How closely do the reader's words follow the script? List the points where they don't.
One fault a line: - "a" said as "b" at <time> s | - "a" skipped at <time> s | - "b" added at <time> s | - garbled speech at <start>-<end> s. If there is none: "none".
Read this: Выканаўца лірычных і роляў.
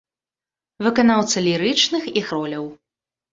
none